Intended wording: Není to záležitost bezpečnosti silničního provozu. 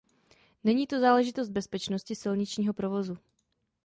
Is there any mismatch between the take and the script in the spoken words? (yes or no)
no